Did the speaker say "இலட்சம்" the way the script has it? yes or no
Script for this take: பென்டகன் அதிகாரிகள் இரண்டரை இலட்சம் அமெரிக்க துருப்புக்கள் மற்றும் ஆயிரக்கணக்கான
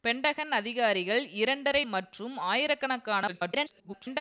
no